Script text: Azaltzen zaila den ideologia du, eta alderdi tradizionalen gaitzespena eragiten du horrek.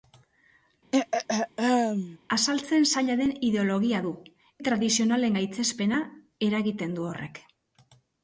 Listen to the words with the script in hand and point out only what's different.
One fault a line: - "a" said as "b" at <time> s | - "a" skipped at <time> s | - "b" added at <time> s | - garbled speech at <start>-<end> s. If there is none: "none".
- "eta alderdi" skipped at 4.1 s